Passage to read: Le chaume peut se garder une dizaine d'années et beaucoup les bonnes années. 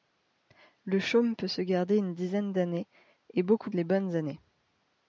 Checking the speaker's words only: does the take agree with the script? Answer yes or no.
yes